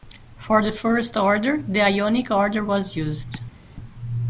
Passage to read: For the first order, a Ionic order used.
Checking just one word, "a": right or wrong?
wrong